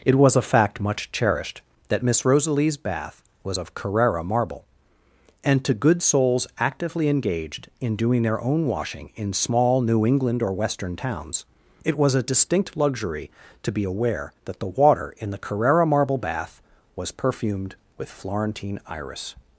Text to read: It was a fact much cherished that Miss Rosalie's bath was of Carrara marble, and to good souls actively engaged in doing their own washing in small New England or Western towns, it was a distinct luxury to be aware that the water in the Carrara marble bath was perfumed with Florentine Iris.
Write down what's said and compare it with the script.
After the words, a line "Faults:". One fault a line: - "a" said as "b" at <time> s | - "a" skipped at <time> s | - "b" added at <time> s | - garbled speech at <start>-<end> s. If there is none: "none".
It was a fact much cherished that Miss Rosalie's bath was of Carrara marble, and to good souls actively engaged in doing their own washing in small New England or Western towns, it was a distinct luxury to be aware that the water in the Carrara marble bath was perfumed with Florentine Iris.
Faults:
none